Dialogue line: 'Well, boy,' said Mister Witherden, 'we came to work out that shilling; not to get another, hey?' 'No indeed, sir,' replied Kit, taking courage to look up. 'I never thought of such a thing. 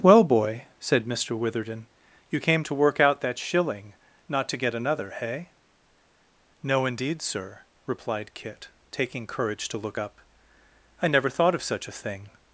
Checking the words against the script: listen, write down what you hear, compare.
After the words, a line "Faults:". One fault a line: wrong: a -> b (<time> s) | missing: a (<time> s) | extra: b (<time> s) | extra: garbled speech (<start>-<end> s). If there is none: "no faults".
'Well, boy,' said Mister Witherden, 'you came to work out that shilling; not to get another, hey?' 'No indeed, sir,' replied Kit, taking courage to look up. 'I never thought of such a thing.
Faults:
wrong: we -> you (2.3 s)